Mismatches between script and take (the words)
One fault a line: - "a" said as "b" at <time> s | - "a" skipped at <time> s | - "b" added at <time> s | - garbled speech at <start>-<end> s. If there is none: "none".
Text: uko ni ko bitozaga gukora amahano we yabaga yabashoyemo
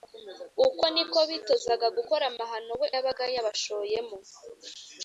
none